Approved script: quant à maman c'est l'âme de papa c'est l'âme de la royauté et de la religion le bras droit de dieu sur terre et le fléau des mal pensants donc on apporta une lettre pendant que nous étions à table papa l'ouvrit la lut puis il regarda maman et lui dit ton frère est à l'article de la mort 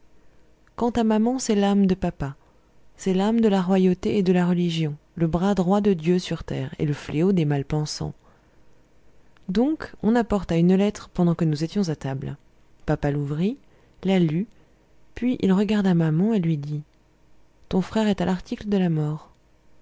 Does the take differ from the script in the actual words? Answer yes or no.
no